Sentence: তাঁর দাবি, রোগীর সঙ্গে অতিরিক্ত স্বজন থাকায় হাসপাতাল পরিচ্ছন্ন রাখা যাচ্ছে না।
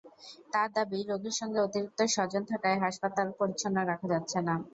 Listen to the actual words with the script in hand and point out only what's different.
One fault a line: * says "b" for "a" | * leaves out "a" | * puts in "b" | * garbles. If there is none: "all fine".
all fine